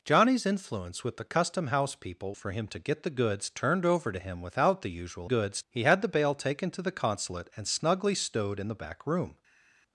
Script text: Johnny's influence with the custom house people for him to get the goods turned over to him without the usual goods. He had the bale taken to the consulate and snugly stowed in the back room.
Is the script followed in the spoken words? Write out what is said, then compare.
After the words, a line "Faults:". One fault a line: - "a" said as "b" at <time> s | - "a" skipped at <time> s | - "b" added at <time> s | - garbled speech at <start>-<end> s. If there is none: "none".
Johnny's influence with the custom house people for him to get the goods turned over to him without the usual goods. He had the bale taken to the consulate and snugly stowed in the back room.
Faults:
none